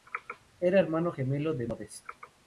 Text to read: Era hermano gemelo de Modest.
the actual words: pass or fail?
pass